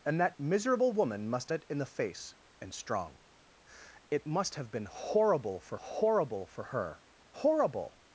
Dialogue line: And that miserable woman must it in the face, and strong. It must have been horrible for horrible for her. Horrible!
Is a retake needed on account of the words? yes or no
no